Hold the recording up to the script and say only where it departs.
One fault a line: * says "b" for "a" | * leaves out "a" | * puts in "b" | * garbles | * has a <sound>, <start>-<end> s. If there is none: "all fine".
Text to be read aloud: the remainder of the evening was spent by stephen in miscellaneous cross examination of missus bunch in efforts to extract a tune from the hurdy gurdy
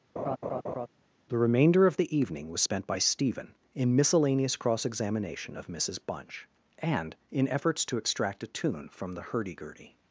* has a laugh, 0.2-0.9 s
* puts in "and"